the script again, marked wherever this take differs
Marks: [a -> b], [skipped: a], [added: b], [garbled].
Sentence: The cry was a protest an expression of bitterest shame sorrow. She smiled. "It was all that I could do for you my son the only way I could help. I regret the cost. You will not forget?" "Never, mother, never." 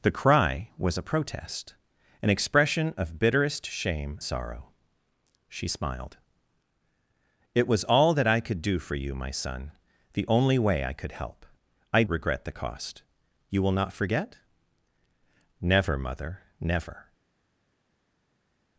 The cry was a protest an expression of bitterest shame sorrow. She smiled. "It was all that I could do for you my son the only way I could help. I regret the cost. You will not forget?" "Never, mother, never."